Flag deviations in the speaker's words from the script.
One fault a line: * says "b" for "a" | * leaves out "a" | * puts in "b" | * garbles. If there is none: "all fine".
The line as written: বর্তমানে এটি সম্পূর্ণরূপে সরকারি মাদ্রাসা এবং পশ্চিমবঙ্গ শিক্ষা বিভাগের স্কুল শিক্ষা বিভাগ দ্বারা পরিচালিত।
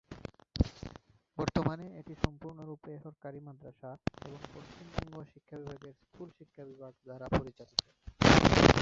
all fine